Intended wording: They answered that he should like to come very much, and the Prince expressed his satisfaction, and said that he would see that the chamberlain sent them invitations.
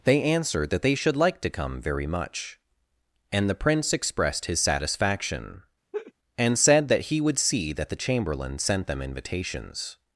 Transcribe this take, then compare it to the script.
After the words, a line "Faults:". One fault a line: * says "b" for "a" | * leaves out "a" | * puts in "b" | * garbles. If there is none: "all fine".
They answered that they should like to come very much, and the Prince expressed his satisfaction, and said that he would see that the chamberlain sent them invitations.
Faults:
* says "they" for "he"